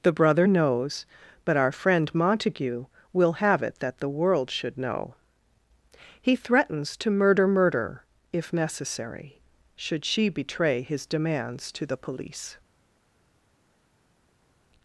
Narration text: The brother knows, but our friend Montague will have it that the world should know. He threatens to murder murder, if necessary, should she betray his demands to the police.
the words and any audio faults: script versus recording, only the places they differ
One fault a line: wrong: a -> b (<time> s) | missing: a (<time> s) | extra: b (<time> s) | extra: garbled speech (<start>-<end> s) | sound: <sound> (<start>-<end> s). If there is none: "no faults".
no faults